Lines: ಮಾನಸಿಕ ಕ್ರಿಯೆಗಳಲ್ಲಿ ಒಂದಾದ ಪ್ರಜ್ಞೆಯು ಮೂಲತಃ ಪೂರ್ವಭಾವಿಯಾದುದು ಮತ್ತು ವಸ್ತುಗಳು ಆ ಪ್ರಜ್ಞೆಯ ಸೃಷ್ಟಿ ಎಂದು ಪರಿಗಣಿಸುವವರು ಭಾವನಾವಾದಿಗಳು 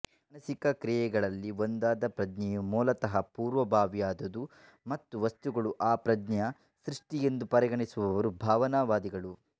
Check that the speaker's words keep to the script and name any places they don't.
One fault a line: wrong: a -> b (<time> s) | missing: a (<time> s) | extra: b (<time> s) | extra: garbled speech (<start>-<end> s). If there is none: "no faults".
no faults